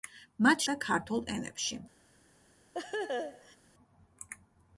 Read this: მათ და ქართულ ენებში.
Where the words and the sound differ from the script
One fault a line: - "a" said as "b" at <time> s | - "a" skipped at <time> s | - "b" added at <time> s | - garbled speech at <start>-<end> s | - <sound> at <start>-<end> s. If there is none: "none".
- laugh at 2.7-3.6 s